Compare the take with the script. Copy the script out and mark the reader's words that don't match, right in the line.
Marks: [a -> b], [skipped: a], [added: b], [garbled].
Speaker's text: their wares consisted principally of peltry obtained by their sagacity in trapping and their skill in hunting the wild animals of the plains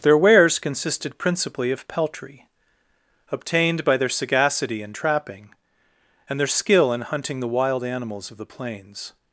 their wares consisted principally of peltry obtained by their sagacity in trapping and their skill in hunting the wild animals of the plains